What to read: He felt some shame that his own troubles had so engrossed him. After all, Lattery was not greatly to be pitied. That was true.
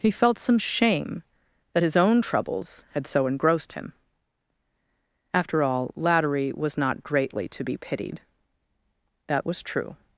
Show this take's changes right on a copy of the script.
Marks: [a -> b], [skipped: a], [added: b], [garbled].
He felt some shame that his own troubles had so engrossed him. After all, Lattery was not greatly to be pitied. That was true.